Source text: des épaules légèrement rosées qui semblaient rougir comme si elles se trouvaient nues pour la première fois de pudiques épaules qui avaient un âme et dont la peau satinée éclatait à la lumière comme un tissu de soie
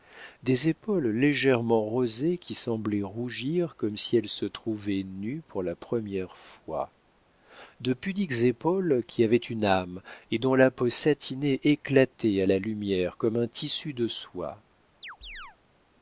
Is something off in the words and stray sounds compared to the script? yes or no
yes